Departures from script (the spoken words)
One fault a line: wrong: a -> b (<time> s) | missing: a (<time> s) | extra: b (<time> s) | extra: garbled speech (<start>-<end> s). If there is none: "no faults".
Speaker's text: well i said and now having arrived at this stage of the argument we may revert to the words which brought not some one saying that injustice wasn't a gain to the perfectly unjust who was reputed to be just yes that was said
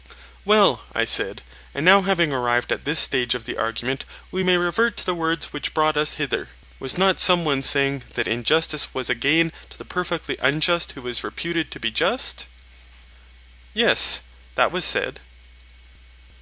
extra: us hither was (6.0 s)
wrong: wasn't -> was (8.9 s)